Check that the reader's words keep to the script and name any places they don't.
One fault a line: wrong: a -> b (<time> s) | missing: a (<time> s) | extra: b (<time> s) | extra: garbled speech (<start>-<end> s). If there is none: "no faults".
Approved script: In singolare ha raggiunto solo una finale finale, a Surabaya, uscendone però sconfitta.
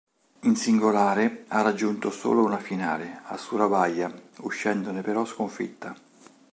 missing: finale (3.2 s)